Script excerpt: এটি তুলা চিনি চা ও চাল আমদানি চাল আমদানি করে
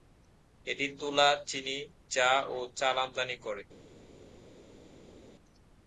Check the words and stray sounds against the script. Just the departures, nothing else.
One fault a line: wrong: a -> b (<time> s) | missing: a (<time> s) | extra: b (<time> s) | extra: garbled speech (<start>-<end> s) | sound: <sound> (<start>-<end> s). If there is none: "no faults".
missing: চাল আমদানি (3.4 s)